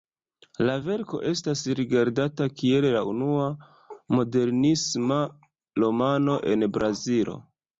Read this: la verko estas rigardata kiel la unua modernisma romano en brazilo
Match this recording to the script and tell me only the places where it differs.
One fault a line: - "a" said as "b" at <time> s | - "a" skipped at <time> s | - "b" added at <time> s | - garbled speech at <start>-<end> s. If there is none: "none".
none